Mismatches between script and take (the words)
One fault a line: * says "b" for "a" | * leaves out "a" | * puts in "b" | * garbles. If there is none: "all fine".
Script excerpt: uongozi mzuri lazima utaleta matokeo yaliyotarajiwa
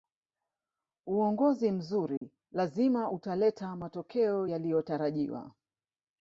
all fine